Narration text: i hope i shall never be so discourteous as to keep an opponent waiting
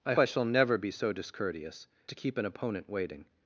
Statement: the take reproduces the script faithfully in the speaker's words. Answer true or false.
false